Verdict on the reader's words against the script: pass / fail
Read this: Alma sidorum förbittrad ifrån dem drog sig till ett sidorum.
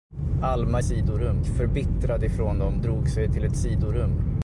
pass